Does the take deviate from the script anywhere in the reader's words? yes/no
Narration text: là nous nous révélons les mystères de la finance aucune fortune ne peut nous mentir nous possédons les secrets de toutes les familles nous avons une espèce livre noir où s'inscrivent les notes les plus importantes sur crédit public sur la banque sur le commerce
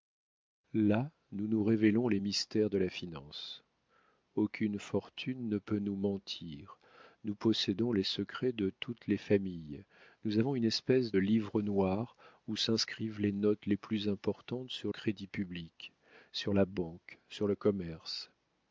no